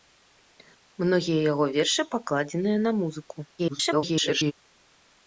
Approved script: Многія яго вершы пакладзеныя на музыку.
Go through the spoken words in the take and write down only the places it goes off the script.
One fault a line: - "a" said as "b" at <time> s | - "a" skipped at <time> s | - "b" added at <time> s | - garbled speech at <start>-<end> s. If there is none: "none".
- garbled speech at 3.6-4.5 s